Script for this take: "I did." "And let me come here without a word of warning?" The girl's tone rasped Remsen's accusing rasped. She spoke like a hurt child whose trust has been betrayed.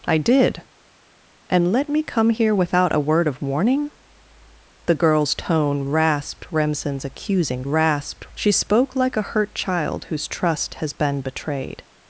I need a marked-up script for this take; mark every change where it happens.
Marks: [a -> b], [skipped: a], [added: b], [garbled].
"I did." "And let me come here without a word of warning?" The girl's tone rasped Remsen's accusing rasped. She spoke like a hurt child whose trust has been betrayed.